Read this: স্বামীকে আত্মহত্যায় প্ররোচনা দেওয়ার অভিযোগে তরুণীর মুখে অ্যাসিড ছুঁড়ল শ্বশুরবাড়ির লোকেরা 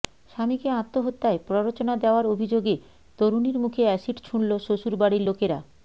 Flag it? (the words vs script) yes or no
no